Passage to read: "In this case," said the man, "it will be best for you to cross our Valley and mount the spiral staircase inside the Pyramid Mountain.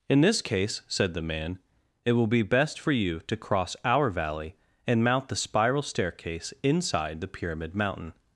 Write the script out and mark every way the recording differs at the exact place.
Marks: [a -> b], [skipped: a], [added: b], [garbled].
"In this case," said the man, "it will be best for you to cross our Valley and mount the spiral staircase inside the Pyramid Mountain.